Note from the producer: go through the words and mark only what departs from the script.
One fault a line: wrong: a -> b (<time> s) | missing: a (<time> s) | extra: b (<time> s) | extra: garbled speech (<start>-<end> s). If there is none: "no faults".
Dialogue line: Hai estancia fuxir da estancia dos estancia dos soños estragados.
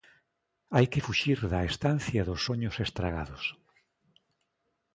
wrong: estancia -> que (0.9 s)
missing: estancia dos (2.4 s)